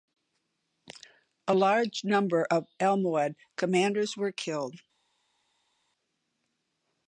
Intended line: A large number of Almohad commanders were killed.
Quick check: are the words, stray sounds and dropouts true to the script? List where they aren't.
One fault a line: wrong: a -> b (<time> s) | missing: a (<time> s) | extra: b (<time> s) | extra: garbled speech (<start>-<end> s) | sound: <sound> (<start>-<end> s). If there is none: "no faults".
no faults